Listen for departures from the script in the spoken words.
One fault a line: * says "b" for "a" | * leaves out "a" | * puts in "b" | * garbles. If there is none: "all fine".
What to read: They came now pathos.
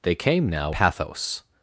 all fine